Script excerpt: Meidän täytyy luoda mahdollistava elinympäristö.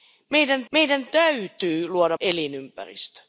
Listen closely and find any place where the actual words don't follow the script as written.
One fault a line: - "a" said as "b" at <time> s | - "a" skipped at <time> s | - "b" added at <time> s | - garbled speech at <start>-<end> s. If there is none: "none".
- "meidän" added at 0.7 s
- "mahdollistava" skipped at 2.2 s